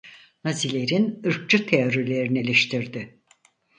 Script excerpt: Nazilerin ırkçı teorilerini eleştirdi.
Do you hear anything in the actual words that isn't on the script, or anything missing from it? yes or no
no